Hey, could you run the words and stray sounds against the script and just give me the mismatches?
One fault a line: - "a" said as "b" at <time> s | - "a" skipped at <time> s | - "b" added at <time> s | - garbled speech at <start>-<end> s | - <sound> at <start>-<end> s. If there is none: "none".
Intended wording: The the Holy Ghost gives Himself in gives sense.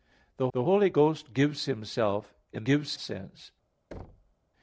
- thud at 3.9-4.4 s